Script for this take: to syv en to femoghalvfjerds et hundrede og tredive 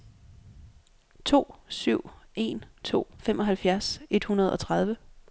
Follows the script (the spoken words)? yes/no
yes